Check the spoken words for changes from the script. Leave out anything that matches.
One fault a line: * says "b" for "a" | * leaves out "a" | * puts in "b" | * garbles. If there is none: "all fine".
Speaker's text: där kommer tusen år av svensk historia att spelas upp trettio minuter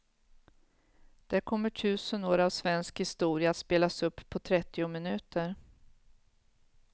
* puts in "på"